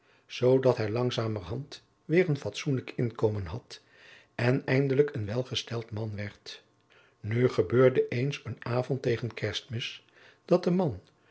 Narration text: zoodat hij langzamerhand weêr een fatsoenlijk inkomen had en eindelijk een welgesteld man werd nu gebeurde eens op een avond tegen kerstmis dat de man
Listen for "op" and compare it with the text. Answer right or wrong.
wrong